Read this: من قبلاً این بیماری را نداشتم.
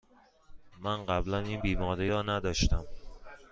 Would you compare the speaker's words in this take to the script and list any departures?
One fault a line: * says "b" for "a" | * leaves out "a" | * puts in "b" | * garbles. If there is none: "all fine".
all fine